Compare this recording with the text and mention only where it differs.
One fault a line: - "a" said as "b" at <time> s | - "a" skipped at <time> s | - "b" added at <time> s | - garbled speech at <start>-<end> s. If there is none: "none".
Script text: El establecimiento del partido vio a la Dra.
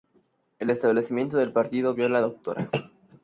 none